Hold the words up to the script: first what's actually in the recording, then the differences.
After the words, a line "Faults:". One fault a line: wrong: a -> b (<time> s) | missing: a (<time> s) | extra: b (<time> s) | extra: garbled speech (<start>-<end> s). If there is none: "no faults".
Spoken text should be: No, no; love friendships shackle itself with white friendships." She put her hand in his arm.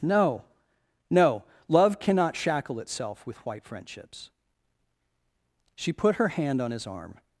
No, no; love cannot shackle itself with white friendships." She put her hand on his arm.
Faults:
wrong: friendships -> cannot (2.0 s)
wrong: in -> on (6.6 s)